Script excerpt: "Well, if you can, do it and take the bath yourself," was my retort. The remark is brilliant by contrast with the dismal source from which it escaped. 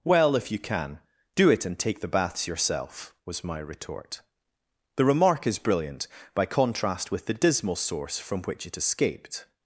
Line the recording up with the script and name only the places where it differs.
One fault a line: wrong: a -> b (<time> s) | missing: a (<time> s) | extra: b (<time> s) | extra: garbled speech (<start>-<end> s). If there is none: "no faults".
wrong: bath -> baths (2.1 s)